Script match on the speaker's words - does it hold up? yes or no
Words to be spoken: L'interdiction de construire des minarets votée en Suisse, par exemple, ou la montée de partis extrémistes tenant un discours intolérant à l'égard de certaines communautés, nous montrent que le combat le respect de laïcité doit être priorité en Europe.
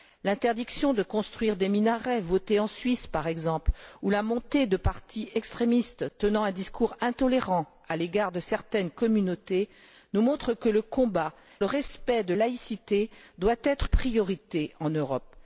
yes